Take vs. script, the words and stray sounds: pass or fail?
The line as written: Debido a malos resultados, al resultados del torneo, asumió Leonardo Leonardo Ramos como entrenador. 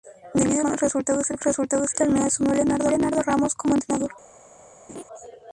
fail